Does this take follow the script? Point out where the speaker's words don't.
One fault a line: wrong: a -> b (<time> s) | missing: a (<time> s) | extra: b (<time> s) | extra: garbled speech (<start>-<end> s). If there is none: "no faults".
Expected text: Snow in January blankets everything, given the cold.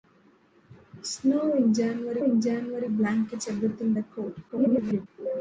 extra: in January (2.2 s)
missing: given (3.9 s)
extra: garbled speech (4.5-5.1 s)